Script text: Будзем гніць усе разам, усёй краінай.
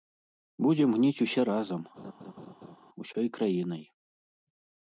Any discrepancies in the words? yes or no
no